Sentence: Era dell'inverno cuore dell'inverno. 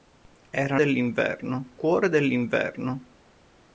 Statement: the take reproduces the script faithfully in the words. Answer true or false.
true